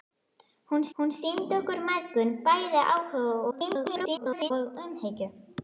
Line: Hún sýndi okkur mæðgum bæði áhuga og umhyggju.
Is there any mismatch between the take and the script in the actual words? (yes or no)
yes